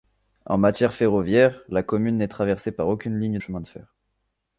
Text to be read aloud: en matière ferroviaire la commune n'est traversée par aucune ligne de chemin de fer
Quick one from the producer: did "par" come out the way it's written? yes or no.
yes